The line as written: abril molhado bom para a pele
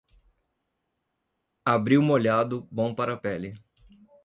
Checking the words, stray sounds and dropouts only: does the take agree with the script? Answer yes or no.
yes